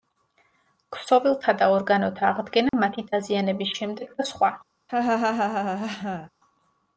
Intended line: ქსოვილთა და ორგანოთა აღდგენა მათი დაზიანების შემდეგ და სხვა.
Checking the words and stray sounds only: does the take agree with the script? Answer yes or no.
no